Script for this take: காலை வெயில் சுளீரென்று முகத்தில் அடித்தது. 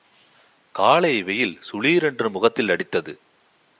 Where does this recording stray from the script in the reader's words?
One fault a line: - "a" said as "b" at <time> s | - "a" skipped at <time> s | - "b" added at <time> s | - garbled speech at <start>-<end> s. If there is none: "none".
none